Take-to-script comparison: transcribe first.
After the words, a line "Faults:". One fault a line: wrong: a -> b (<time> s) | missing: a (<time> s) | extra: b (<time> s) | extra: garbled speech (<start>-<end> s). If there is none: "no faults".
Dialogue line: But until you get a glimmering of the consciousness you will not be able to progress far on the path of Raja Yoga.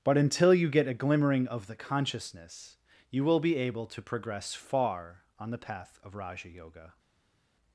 But until you get a glimmering of the consciousness you will be able to progress far on the path of Raja Yoga.
Faults:
missing: not (3.4 s)